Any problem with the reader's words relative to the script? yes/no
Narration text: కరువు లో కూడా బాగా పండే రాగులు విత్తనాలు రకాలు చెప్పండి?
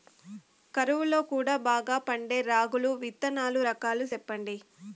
no